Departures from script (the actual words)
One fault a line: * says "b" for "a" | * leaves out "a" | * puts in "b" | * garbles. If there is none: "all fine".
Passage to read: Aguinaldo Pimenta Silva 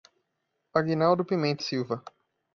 all fine